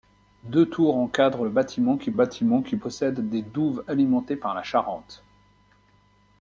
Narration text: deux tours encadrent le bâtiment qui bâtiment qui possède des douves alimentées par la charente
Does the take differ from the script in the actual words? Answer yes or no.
no